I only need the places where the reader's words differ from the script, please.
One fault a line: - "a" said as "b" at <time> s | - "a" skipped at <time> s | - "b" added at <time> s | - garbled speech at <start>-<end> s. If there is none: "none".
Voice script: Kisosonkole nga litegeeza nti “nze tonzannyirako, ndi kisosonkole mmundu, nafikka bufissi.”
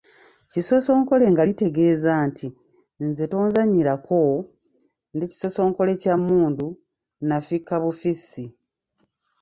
- "kya" added at 6.0 s